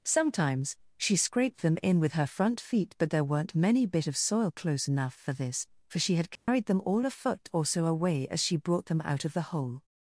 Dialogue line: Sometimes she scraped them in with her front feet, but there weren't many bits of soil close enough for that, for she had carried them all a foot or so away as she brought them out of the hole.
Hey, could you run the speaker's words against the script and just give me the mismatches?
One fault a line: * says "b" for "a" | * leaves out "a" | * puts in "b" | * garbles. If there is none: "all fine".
* says "bit" for "bits"
* says "this" for "that"